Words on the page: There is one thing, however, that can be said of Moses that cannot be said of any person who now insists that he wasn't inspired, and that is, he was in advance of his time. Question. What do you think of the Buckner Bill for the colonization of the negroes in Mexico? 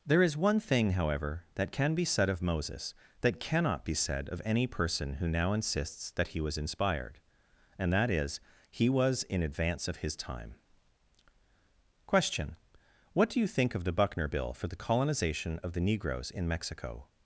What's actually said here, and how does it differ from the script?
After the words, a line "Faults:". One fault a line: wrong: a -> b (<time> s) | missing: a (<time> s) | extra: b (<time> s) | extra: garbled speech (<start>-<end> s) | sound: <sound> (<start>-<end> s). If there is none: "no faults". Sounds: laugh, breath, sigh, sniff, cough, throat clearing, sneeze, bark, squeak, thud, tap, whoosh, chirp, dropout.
There is one thing, however, that can be said of Moses that cannot be said of any person who now insists that he was inspired, and that is, he was in advance of his time. Question. What do you think of the Buckner Bill for the colonization of the negroes in Mexico?
Faults:
wrong: wasn't -> was (6.4 s)